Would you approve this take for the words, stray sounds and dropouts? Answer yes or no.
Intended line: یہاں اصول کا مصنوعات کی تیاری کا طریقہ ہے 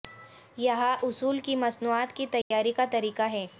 no